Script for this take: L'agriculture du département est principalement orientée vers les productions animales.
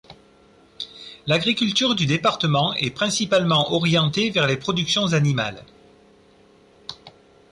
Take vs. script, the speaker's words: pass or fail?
pass